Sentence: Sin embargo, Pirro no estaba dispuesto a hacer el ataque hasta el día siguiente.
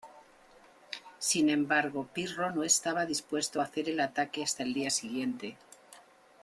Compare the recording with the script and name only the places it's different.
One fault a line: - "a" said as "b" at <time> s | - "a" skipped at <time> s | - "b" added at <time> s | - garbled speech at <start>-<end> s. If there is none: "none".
none